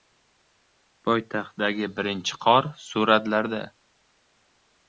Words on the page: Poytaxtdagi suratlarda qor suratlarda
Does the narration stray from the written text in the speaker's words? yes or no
yes